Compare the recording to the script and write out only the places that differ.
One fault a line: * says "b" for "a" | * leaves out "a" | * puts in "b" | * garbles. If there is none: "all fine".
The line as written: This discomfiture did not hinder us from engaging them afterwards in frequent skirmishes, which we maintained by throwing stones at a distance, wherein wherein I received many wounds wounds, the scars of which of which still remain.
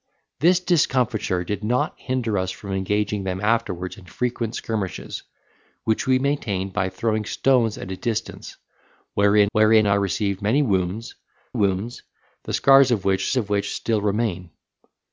all fine